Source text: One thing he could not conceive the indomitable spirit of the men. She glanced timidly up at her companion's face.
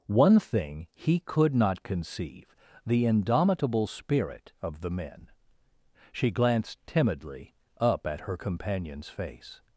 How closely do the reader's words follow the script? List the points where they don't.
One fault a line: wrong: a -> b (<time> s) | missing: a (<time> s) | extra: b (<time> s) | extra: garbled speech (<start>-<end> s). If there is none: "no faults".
no faults